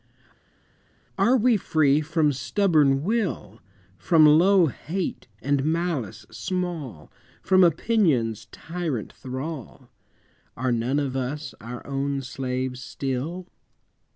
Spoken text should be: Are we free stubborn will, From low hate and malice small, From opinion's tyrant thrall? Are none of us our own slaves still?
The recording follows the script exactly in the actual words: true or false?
false